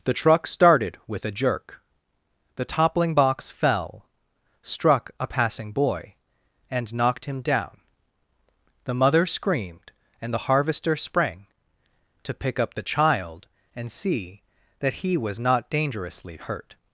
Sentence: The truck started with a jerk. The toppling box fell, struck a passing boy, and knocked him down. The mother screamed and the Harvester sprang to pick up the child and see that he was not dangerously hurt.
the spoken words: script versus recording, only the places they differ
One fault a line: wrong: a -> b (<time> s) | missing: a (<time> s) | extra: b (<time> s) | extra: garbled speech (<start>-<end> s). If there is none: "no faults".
no faults